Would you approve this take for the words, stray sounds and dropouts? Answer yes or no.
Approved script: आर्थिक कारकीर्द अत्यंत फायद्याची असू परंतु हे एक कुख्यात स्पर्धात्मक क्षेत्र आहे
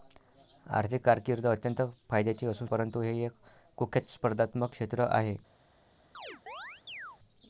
no